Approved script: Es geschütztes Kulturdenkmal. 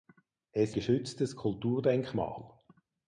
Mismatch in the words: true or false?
false